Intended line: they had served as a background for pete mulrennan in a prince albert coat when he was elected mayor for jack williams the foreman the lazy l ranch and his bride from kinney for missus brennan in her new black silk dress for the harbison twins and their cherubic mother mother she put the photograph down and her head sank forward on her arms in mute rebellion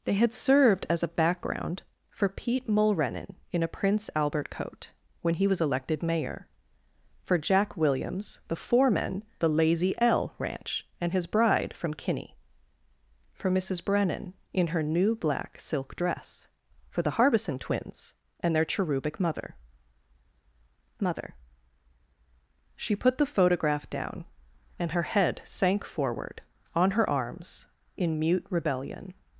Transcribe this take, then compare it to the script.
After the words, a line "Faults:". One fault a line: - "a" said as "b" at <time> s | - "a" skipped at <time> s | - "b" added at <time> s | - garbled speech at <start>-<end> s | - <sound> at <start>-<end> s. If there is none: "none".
they had served as a background for pete mulrennan in a prince albert coat when he was elected mayor for jack williams the foreman the lazy l ranch and his bride from kinney for missus brennan in her new black silk dress for the harbison twins and their cherubic mother mother she put the photograph down and her head sank forward on her arms in mute rebellion
Faults:
none